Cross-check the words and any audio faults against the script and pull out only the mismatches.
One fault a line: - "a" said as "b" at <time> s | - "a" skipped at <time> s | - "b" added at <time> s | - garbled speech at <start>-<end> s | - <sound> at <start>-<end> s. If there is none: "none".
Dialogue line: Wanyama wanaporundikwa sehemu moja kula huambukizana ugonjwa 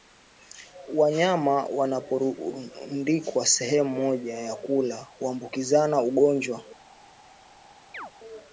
- "ya" added at 4.4 s
- chirp at 7.9-8.1 s